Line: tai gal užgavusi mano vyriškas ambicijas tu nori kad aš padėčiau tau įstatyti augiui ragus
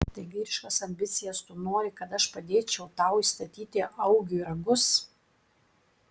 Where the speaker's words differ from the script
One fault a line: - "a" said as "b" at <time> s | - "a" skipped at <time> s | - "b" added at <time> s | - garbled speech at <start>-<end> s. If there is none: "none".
- "gal užgavusi mano" skipped at 0.2 s